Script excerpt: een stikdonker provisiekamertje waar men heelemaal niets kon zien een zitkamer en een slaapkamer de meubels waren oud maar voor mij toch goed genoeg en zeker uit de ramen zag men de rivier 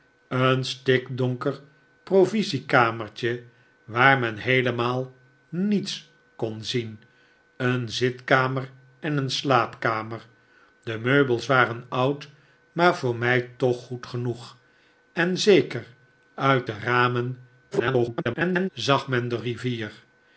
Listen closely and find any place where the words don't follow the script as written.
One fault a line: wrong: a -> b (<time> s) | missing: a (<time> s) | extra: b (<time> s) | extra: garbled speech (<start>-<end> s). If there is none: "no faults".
extra: garbled speech (17.7-18.7 s)